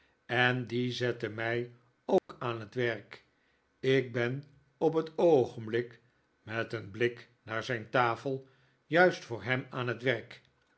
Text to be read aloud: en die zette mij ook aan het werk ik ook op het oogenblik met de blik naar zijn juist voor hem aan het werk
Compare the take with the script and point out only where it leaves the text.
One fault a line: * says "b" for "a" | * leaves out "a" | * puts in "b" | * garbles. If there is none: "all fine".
* says "ben" for "ook"
* says "een" for "de"
* puts in "tafel"